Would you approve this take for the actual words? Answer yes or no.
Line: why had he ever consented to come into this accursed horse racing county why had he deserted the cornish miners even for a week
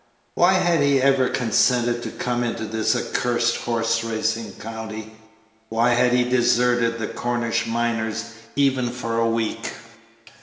yes